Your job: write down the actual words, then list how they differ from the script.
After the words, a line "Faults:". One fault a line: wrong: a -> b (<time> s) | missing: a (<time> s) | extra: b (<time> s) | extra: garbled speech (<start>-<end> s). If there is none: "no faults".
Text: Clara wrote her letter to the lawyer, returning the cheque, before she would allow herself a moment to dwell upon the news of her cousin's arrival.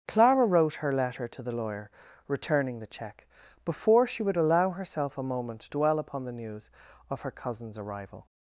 Clara wrote her letter to the lawyer, returning the cheque, before she would allow herself a moment dwell upon the news of her cousin's arrival.
Faults:
missing: to (5.6 s)